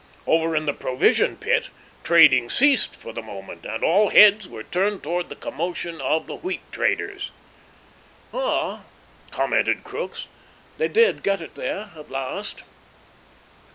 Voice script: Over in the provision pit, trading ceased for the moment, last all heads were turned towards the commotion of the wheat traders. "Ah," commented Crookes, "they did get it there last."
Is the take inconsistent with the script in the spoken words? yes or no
yes